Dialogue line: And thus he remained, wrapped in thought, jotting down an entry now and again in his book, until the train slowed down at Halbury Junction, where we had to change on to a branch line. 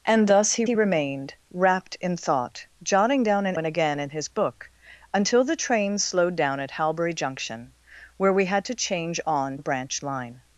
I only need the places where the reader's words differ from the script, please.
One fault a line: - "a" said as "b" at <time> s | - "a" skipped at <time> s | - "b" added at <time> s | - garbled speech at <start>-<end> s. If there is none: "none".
- "he" added at 0.6 s
- "entry now" skipped at 3.6 s
- "to" skipped at 9.6 s